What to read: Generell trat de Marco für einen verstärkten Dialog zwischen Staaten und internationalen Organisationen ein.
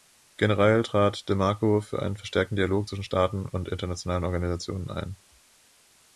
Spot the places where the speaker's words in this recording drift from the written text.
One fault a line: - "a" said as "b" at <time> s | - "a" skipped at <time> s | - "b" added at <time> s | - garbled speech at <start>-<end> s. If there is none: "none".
none